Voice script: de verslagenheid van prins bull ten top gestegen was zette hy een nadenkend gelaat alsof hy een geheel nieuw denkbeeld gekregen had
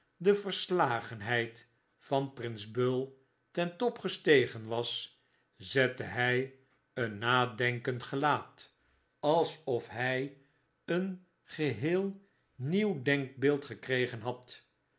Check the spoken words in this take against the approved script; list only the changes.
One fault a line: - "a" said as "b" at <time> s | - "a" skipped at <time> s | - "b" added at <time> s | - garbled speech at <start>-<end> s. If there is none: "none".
none